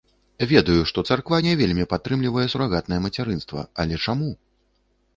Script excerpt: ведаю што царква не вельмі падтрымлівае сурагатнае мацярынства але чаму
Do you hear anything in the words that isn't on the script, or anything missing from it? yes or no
no